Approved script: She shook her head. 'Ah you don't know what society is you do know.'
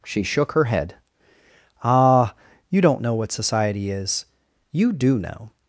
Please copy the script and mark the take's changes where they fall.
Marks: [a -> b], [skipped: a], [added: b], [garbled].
She shook her head. 'Ah you don't know what society is you do know.'